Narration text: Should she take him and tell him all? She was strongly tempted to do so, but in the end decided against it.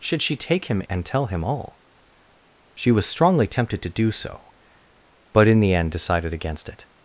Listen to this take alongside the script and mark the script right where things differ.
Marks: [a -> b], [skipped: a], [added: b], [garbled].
Should she take him and tell him all? She was strongly tempted to do so, but in the end decided against it.